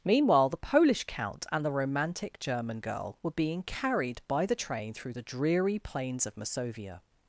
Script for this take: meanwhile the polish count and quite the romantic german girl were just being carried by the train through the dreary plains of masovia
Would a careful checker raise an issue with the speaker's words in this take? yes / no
yes